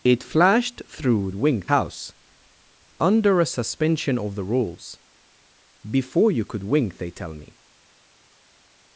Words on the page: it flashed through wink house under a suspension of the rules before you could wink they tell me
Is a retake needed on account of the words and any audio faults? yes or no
no